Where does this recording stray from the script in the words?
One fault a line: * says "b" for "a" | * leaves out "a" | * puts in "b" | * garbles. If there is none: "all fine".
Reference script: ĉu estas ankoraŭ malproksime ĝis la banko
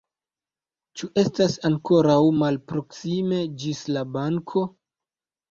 all fine